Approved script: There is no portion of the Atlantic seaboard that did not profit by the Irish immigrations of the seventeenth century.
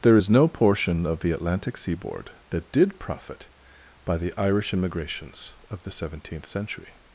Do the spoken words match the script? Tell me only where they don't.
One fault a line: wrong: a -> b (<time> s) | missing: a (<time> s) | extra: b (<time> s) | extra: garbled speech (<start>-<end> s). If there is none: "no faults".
missing: not (3.0 s)